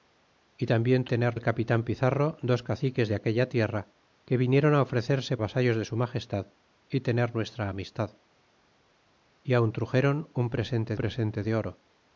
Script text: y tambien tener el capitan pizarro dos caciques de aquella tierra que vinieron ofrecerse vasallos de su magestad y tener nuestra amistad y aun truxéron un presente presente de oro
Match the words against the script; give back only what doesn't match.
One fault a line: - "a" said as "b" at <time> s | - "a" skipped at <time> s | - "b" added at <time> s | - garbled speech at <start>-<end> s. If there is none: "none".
none